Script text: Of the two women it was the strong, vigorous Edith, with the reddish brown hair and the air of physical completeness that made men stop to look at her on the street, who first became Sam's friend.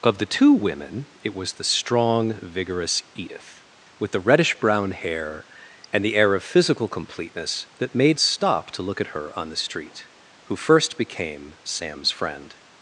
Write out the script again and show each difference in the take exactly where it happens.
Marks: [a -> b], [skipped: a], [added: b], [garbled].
Of the two women it was the strong, vigorous Edith, with the reddish brown hair and the air of physical completeness that made [skipped: men] stop to look at her on the street, who first became Sam's friend.